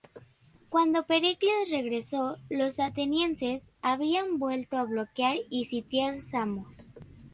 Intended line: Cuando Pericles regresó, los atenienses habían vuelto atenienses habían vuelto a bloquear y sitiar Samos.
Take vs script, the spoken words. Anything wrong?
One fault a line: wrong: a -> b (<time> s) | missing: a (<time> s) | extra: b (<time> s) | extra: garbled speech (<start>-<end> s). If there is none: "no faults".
missing: atenienses habían vuelto (4.8 s)